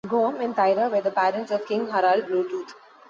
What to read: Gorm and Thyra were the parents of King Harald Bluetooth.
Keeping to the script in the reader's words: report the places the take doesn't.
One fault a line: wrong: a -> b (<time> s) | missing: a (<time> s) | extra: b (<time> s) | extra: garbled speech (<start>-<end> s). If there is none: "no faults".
no faults